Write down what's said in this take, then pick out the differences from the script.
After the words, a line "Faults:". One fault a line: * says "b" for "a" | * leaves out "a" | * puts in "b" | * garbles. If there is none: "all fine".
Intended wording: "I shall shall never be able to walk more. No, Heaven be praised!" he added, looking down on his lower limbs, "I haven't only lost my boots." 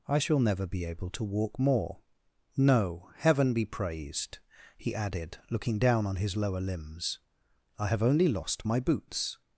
"I shall never be able to walk more. No, Heaven be praised!" he added, looking down on his lower limbs, "I have only lost my boots."
Faults:
* leaves out "shall"
* says "have" for "haven't"